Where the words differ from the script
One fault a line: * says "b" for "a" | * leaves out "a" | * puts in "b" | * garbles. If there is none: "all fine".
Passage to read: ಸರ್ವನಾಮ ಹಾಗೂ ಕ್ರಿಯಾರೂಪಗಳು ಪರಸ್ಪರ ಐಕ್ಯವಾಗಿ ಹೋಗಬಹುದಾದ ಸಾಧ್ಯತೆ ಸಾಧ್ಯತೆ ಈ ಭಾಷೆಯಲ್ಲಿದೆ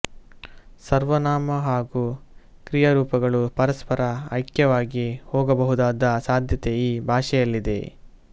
* leaves out "ಸಾಧ್ಯತೆ"